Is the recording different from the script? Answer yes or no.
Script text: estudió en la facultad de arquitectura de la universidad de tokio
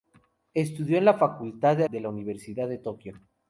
yes